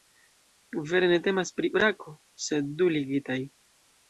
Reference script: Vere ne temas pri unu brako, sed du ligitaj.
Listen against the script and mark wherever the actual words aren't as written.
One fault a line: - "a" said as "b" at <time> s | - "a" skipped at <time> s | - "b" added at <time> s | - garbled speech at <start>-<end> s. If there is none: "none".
- "unu" skipped at 1.7 s